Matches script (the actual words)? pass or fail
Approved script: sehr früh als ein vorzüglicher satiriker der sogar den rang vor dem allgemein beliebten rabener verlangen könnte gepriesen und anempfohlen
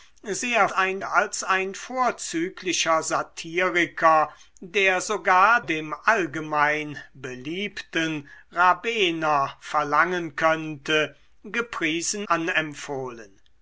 fail